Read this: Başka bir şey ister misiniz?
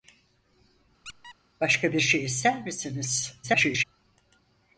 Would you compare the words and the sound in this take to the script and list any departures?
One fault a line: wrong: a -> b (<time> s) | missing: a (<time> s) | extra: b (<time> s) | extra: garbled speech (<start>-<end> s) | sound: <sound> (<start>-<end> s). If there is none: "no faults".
sound: squeak (1.0-1.4 s)
extra: garbled speech (3.4-3.8 s)